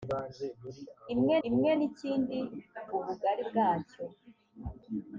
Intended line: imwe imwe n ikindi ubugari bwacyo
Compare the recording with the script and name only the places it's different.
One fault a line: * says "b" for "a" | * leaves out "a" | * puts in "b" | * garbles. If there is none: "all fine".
all fine